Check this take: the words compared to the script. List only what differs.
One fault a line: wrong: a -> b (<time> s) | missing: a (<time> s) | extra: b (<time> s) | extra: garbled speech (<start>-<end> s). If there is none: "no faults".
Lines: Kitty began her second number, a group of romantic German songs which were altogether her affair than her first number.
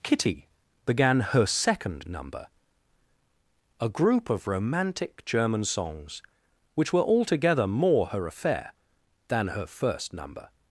extra: more (7.7 s)